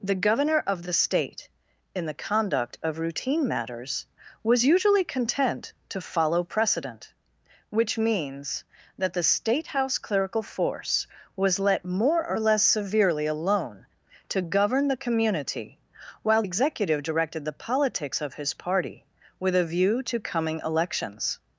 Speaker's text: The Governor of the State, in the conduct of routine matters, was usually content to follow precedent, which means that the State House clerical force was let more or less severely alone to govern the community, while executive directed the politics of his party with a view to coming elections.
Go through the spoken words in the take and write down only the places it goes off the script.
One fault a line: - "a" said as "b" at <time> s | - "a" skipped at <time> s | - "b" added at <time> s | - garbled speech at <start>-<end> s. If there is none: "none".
none